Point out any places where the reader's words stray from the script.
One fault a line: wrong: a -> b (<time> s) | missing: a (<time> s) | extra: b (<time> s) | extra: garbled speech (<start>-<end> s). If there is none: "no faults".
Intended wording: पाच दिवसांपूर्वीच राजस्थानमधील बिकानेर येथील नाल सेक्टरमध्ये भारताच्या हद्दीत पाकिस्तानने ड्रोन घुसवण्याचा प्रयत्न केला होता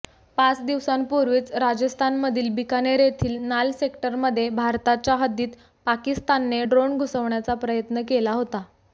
no faults